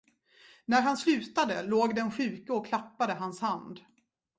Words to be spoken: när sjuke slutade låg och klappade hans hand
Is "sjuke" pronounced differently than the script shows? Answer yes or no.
yes